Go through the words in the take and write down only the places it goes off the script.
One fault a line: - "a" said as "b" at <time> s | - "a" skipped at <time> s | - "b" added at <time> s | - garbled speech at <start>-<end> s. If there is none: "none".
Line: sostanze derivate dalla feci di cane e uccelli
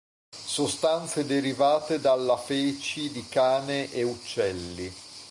none